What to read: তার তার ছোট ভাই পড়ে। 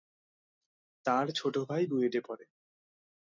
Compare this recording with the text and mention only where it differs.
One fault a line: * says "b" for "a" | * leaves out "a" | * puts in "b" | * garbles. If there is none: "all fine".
* leaves out "তার"
* puts in "বুয়েটে"